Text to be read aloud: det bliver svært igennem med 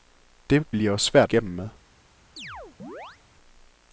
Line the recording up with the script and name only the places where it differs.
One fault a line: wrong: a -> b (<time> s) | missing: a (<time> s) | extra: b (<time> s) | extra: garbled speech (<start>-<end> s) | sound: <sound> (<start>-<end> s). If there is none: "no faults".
sound: chirp (2.4-3.2 s)